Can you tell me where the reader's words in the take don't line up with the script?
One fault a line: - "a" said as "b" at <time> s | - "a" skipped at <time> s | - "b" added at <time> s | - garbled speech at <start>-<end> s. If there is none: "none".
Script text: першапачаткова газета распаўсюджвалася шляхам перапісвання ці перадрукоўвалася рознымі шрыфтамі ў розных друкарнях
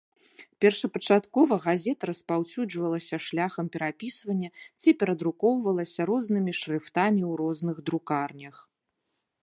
none